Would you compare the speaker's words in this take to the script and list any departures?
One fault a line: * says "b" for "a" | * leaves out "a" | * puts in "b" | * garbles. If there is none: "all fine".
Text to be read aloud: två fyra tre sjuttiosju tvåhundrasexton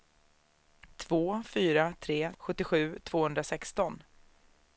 all fine